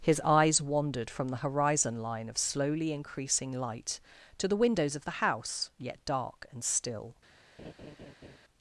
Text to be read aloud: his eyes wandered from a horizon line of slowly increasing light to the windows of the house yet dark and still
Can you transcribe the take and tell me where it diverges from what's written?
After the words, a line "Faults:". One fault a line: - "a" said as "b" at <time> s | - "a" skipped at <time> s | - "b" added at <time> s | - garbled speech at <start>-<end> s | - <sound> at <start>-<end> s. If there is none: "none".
his eyes wandered from the horizon line of slowly increasing light to the windows of the house yet dark and still
Faults:
- "a" said as "the" at 1.3 s
- laugh at 7.6-8.4 s